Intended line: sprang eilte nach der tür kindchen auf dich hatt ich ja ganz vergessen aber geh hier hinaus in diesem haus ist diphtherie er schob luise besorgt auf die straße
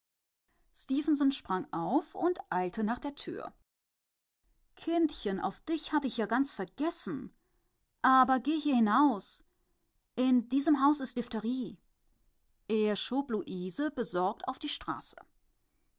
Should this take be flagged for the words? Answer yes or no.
yes